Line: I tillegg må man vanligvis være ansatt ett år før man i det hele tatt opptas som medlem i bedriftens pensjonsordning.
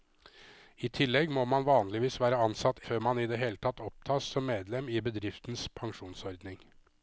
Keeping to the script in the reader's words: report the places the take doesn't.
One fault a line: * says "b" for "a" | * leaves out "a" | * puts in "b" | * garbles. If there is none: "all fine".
* leaves out "ett år"